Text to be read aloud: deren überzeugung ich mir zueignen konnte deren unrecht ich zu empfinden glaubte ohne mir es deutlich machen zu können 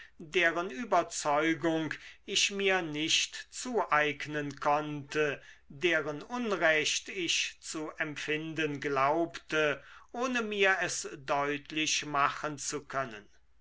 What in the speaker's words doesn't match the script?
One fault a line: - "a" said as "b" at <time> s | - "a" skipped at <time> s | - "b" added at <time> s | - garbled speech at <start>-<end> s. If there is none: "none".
- "nicht" added at 2.8 s